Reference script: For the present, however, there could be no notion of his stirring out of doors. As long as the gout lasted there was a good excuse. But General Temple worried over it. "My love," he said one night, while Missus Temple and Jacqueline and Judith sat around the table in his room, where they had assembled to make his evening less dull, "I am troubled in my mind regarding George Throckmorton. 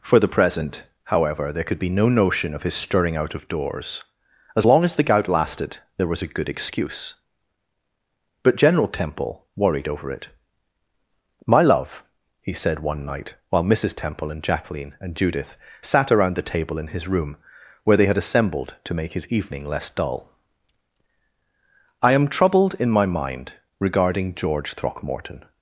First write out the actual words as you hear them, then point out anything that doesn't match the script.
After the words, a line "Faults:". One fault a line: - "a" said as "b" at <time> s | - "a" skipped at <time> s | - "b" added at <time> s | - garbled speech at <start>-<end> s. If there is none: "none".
For the present, however, there could be no notion of his stirring out of doors. As long as the gout lasted there was a good excuse. But General Temple worried over it. "My love," he said one night, while Missus Temple and Jacqueline and Judith sat around the table in his room, where they had assembled to make his evening less dull, "I am troubled in my mind regarding George Throckmorton.
Faults:
none